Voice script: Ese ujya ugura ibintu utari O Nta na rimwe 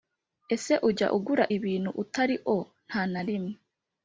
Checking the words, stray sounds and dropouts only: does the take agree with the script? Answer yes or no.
yes